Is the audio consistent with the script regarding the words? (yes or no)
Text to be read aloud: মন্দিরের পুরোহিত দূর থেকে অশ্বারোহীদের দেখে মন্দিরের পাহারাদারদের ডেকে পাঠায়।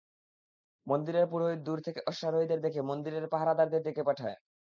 yes